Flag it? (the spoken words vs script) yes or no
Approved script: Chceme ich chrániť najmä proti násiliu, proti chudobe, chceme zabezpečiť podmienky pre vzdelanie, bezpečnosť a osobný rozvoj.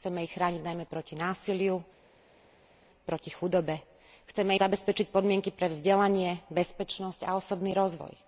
no